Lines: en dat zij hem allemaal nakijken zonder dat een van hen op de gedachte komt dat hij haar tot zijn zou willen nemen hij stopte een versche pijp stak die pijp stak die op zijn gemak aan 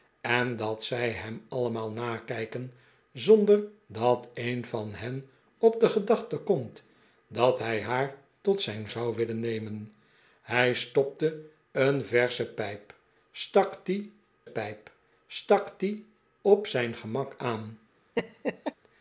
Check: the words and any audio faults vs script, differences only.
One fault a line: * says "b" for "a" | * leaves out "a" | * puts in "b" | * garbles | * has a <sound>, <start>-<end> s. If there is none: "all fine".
* has a laugh, 18.2-18.7 s